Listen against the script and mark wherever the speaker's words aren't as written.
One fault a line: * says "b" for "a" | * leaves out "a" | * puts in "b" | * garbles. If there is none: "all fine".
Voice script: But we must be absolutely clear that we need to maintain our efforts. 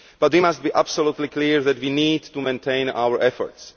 all fine